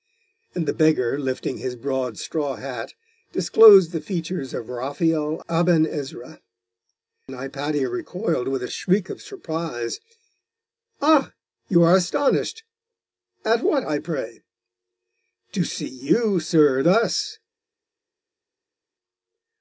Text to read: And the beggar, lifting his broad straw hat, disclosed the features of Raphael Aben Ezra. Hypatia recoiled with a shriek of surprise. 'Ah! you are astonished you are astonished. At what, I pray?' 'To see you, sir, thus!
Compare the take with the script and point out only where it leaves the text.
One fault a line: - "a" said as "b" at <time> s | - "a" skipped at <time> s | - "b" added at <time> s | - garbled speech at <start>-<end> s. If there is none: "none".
- "you are astonished" skipped at 12.6 s